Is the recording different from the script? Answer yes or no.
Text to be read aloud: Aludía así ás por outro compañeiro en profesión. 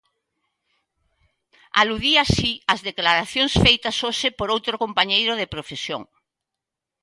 yes